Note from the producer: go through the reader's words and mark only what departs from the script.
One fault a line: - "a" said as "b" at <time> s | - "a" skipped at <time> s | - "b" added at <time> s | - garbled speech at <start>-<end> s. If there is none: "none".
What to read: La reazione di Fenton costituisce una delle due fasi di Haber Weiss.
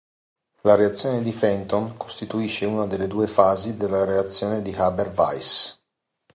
- "della reazione" added at 3.7 s